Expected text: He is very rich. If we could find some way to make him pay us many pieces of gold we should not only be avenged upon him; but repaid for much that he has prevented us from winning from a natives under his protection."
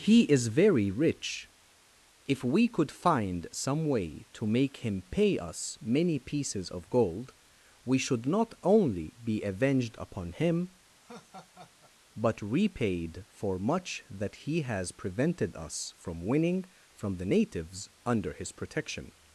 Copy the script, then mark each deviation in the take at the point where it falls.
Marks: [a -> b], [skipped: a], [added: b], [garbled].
He is very rich. If we could find some way to make him pay us many pieces of gold we should not only be avenged upon him; but repaid for much that he has prevented us from winning from [a -> the] natives under his protection."